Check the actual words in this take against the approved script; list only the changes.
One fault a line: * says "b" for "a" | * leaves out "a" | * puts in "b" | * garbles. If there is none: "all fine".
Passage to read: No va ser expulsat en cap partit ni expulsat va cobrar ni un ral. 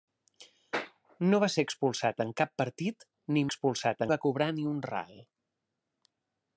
all fine